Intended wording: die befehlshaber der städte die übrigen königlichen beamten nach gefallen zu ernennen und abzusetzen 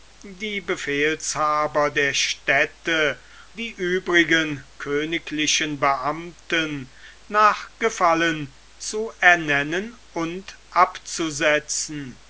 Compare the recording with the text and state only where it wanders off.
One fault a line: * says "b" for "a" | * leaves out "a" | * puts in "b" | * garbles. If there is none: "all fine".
all fine